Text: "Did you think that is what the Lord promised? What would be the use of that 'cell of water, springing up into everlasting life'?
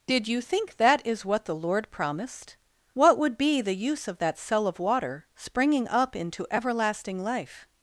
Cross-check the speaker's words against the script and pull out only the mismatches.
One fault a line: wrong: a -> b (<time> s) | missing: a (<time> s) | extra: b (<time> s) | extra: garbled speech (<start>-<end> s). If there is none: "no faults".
no faults